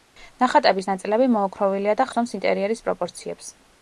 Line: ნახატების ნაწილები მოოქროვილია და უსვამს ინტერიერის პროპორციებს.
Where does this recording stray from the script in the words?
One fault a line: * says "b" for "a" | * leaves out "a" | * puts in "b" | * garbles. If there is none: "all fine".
all fine